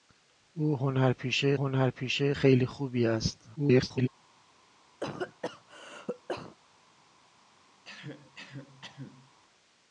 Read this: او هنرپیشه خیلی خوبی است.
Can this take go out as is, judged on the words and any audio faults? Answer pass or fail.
fail